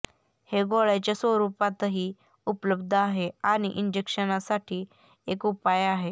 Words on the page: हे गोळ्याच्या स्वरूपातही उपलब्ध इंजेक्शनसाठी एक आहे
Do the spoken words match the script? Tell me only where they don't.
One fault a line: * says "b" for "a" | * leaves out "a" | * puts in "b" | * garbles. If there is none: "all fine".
* puts in "आहे आणि"
* puts in "उपाय"